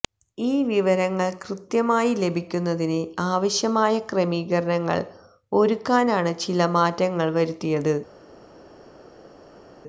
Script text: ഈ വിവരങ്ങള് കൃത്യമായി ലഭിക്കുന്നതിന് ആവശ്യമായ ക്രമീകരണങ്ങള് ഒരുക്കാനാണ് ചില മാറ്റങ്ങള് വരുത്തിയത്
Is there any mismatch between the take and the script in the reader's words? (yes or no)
no